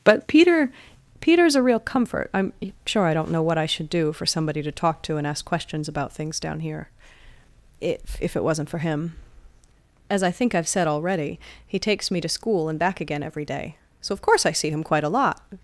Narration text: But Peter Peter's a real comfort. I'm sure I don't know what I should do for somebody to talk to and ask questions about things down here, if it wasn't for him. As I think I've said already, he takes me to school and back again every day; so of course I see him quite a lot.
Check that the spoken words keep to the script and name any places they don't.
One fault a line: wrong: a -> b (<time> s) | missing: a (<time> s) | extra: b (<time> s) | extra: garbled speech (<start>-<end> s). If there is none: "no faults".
extra: if (8.2 s)